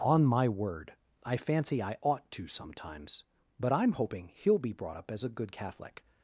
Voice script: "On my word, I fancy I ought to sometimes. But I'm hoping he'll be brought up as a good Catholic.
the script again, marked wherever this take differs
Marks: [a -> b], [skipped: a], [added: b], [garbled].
"On my word, I fancy I ought to sometimes. But I'm hoping he'll be brought up as a good Catholic.